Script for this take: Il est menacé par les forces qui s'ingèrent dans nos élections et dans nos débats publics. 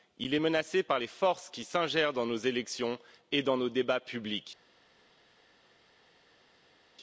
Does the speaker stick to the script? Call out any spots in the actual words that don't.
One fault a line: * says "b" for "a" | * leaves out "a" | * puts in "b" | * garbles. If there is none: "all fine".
all fine